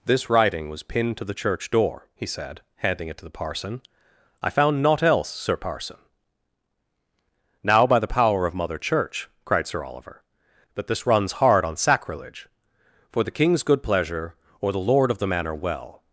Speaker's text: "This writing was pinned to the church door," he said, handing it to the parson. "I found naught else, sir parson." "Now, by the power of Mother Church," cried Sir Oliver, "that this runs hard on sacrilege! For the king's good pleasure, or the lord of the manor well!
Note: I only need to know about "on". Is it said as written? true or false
true